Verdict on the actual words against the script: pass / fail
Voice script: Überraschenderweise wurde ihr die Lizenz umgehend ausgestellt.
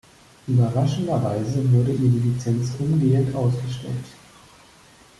pass